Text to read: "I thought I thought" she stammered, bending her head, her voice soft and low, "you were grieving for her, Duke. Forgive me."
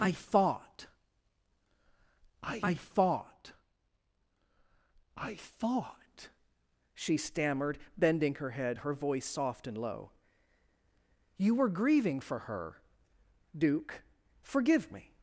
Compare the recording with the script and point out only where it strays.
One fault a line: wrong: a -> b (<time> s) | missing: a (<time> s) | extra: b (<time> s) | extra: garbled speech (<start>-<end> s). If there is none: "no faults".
extra: I thought I (2.6 s)